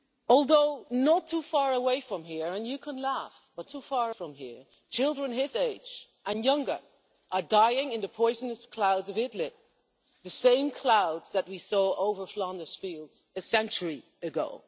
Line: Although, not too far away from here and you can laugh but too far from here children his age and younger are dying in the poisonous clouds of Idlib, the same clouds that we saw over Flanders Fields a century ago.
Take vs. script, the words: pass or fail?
pass